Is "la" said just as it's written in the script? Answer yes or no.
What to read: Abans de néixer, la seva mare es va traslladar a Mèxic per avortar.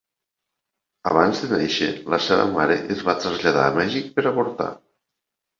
yes